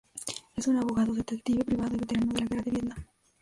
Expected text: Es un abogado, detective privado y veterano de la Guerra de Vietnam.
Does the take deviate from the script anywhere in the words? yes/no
no